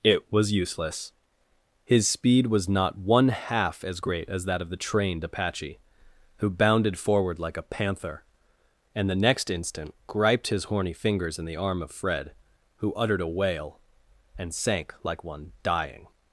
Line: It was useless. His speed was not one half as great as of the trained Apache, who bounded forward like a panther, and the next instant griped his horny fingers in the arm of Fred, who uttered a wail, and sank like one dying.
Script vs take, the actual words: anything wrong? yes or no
yes